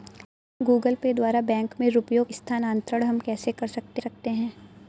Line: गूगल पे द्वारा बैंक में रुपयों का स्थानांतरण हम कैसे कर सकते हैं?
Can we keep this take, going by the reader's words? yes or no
no